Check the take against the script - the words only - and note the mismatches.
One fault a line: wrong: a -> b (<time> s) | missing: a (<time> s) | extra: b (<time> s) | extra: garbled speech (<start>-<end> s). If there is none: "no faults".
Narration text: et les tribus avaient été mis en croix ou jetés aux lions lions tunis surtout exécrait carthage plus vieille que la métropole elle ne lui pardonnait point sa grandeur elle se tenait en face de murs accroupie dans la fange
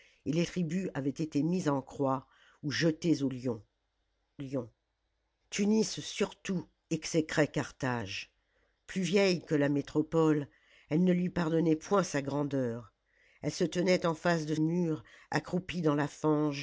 no faults